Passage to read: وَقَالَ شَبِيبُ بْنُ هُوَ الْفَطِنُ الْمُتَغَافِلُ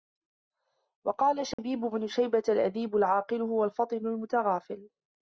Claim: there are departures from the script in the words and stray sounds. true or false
true